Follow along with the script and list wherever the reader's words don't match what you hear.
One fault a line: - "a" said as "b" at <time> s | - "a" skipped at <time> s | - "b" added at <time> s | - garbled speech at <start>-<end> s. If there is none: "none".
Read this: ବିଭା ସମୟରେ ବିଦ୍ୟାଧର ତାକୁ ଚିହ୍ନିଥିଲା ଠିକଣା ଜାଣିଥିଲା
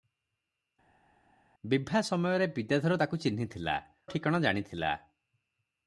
none